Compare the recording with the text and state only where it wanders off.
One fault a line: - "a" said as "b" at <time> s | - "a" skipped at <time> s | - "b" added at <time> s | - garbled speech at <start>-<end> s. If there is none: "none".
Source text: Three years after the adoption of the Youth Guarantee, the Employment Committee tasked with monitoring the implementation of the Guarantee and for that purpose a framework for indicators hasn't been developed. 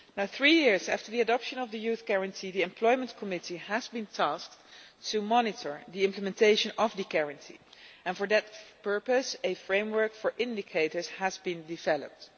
- "has been" added at 3.6 s
- "hasn't" said as "has" at 11.2 s